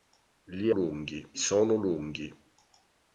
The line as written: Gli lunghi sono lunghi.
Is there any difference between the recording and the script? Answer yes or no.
no